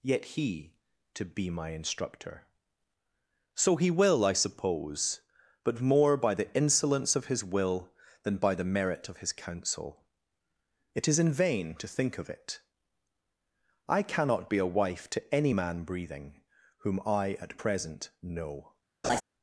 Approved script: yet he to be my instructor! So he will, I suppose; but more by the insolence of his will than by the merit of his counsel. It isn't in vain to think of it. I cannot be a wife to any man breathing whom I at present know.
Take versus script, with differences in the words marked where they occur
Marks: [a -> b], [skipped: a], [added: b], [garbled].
yet he to be my instructor! So he will, I suppose; but more by the insolence of his will than by the merit of his counsel. It [isn't -> is] in vain to think of it. I cannot be a wife to any man breathing whom I at present know.